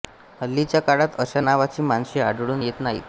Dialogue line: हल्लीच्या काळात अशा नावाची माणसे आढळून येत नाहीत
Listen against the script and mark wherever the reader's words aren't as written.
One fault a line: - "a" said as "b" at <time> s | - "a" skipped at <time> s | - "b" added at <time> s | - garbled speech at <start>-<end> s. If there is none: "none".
none